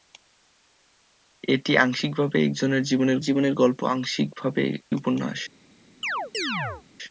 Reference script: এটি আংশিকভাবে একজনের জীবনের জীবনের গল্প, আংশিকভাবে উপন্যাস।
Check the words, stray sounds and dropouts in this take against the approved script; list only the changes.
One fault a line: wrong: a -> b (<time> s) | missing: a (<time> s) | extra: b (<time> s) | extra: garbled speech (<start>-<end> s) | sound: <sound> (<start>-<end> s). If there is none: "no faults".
sound: chirp (6.0-6.8 s)